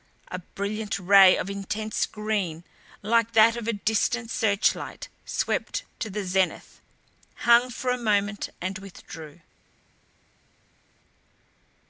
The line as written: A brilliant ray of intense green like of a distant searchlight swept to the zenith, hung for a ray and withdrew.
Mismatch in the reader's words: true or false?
true